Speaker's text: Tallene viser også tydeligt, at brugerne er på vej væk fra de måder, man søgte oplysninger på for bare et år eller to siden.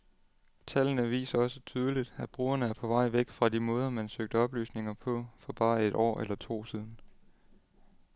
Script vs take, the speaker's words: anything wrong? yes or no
no